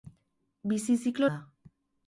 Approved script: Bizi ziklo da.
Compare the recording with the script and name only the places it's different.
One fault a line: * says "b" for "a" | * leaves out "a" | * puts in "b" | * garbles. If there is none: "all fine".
all fine